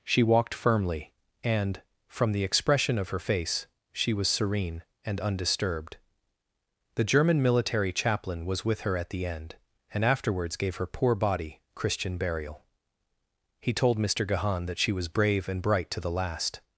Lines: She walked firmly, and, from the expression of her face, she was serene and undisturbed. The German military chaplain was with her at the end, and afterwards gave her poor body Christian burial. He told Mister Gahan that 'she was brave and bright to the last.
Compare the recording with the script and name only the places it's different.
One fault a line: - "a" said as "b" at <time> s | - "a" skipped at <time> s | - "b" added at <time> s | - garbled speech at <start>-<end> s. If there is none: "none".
none